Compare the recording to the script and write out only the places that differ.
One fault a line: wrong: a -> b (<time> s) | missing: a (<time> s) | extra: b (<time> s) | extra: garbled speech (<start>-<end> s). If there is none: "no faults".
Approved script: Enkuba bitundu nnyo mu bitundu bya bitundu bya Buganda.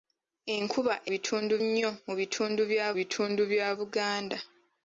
no faults